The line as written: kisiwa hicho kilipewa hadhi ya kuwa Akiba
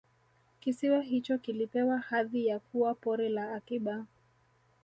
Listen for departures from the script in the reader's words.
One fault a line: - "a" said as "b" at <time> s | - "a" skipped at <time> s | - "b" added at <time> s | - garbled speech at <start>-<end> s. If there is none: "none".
- "Pori la" added at 2.9 s